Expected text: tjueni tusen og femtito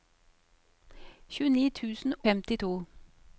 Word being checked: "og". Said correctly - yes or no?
no